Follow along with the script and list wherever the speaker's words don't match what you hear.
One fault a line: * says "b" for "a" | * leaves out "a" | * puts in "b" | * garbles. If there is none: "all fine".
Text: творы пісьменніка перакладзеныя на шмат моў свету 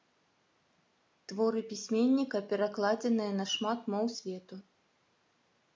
all fine